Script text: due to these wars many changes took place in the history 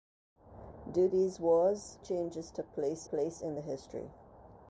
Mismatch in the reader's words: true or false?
true